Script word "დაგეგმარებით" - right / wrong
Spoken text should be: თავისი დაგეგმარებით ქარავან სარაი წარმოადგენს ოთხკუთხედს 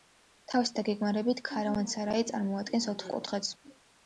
right